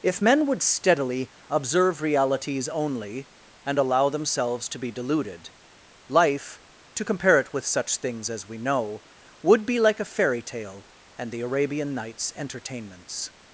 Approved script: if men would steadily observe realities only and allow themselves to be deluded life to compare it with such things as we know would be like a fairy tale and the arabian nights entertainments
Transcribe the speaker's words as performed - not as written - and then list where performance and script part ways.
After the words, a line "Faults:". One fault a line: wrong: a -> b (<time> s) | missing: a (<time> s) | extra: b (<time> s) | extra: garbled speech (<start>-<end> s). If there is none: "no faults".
if men would steadily observe realities only and allow themselves to be deluded life to compare it with such things as we know would be like a fairy tale and the arabian nights entertainments
Faults:
no faults